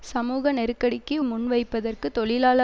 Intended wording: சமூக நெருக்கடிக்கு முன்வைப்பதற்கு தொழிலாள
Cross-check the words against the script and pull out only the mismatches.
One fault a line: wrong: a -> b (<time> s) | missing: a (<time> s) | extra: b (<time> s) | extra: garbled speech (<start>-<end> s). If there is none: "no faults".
no faults